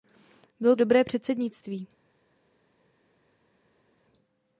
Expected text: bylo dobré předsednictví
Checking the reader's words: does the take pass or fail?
pass